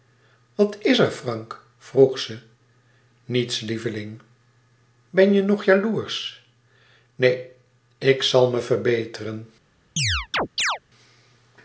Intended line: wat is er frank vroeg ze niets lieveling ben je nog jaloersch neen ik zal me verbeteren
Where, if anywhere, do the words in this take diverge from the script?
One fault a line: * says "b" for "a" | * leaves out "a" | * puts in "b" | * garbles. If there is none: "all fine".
all fine